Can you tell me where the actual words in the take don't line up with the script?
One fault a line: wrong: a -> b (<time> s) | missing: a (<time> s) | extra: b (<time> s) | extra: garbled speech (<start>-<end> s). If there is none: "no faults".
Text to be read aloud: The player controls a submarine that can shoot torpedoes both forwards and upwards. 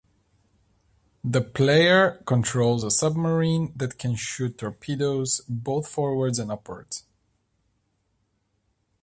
no faults